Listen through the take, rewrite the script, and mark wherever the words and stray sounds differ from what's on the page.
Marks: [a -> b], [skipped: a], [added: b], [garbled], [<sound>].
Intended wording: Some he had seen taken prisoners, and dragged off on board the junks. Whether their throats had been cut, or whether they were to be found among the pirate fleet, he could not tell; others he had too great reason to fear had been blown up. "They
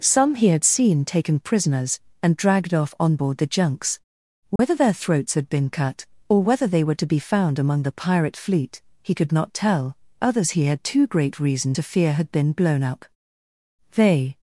Some he had seen taken prisoners, and dragged off on board the junks. Whether [dropout] their throats had been cut, or whether they were to be found among the pirate fleet, he could not tell; others he had too great reason to fear had been blown up. "They